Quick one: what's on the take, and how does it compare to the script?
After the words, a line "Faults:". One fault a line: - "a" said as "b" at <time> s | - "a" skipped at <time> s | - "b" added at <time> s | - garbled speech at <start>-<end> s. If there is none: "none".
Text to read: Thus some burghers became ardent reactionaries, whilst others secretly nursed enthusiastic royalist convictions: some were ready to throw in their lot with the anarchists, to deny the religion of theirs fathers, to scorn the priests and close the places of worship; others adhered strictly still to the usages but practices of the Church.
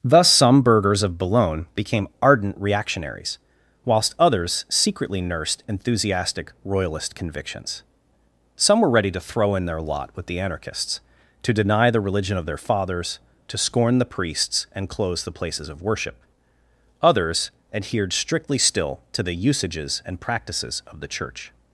Thus some burghers of Boulogne became ardent reactionaries, whilst others secretly nursed enthusiastic royalist convictions: some were ready to throw in their lot with the anarchists, to deny the religion of their fathers, to scorn the priests and close the places of worship; others adhered strictly still to the usages and practices of the Church.
Faults:
- "of Boulogne" added at 1.0 s
- "theirs" said as "their" at 12.5 s
- "but" said as "and" at 20.1 s